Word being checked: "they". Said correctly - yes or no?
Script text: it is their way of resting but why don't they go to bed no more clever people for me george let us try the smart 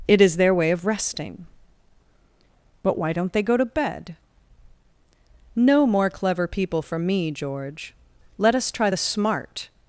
yes